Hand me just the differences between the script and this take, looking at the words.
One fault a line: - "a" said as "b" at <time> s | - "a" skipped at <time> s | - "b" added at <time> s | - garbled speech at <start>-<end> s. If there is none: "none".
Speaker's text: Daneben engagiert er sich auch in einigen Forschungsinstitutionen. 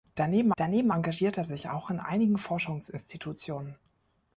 - "daneben" added at 0.6 s